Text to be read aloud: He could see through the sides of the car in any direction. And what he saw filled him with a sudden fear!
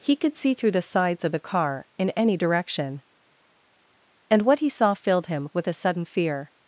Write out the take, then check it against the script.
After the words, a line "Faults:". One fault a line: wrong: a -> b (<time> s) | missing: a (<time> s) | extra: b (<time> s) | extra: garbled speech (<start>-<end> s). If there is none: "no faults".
He could see through the sides of the car in any direction. And what he saw filled him with a sudden fear!
Faults:
no faults